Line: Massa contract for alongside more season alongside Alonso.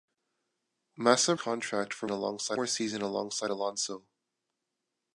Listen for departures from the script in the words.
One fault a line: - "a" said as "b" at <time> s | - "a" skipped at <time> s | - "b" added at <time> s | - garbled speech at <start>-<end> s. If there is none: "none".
none